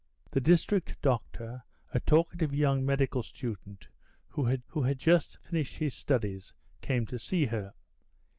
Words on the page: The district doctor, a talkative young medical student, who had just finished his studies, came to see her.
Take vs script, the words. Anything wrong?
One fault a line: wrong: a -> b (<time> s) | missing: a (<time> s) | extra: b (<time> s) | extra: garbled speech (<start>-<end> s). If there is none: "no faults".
extra: who had (4.7 s)